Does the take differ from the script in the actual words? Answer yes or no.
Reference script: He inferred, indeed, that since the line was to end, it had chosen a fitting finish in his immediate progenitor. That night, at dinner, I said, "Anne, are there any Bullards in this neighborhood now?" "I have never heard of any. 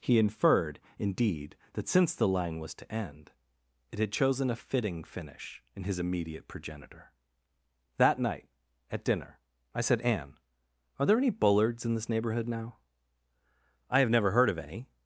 no